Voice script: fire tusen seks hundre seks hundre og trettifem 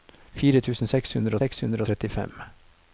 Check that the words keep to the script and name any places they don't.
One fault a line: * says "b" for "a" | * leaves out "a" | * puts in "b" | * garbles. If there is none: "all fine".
all fine